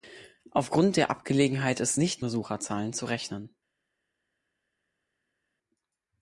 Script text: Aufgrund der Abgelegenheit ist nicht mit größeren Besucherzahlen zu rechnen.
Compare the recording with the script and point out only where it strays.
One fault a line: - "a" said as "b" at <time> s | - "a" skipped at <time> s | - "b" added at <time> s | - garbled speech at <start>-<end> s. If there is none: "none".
- "mit größeren" skipped at 2.2 s